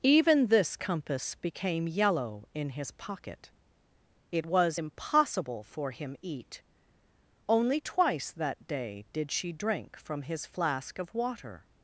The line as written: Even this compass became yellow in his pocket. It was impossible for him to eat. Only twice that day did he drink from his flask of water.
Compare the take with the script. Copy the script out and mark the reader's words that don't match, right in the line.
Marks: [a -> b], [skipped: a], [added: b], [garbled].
Even this compass became yellow in his pocket. It was impossible for him [skipped: to] eat. Only twice that day did [he -> she] drink from his flask of water.